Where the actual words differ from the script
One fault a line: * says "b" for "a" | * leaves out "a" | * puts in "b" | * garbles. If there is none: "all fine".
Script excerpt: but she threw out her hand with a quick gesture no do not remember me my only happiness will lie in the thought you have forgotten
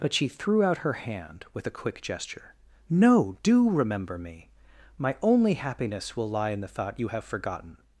* leaves out "not"